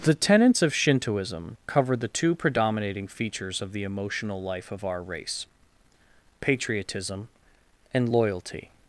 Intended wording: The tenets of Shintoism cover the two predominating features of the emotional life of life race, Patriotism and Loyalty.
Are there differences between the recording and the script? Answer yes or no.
yes